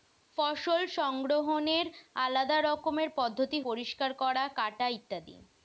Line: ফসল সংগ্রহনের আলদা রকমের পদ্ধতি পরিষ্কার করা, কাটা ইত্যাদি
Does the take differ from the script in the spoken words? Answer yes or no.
no